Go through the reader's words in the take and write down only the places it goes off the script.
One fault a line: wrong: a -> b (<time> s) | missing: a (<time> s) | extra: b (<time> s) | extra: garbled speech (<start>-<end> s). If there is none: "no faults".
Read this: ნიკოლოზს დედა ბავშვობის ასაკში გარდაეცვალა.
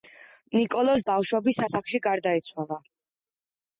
missing: დედა (1.1 s)